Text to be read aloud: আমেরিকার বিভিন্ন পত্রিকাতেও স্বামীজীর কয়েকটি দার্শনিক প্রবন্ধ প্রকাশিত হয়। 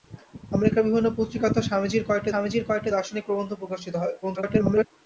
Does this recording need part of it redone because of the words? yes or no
yes